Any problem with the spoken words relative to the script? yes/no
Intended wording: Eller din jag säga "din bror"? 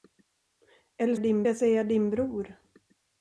no